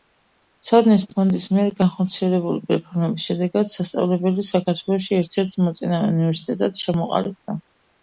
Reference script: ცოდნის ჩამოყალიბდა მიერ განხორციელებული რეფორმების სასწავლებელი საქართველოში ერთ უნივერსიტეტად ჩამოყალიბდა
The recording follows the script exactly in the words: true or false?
false